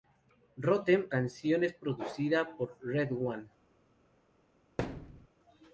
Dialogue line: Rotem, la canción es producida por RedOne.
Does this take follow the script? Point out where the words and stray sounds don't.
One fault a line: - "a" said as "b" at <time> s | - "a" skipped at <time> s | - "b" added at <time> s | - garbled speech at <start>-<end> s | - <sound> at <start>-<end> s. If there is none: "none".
- "la" skipped at 1.1 s
- thud at 4.8-5.3 s